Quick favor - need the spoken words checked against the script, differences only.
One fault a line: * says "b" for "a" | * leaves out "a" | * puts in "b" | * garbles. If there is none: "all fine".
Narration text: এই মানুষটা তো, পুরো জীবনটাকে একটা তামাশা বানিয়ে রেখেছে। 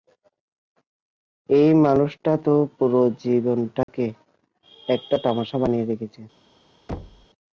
all fine